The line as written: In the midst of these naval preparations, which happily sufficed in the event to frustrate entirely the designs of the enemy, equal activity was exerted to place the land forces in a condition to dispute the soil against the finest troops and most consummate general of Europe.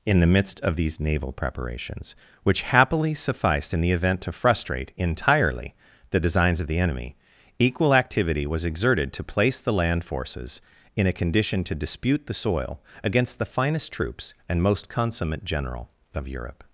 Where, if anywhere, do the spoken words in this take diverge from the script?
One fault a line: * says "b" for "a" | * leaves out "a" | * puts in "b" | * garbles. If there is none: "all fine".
all fine